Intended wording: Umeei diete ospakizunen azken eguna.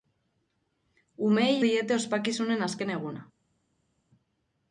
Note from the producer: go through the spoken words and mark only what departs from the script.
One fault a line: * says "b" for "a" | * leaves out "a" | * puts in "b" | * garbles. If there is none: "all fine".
all fine